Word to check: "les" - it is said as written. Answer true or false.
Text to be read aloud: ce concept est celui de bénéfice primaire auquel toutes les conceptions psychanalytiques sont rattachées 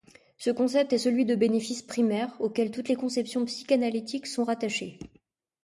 true